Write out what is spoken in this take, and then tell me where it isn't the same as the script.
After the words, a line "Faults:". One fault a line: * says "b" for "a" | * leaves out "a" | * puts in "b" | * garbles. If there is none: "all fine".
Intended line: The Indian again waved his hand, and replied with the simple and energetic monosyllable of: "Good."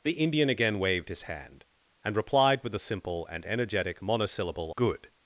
The Indian again waved his hand, and replied with the simple and energetic monosyllable: "Good."
Faults:
* leaves out "of"